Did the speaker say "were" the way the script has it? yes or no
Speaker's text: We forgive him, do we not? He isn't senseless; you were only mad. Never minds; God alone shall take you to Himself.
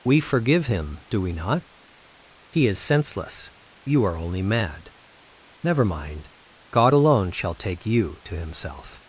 no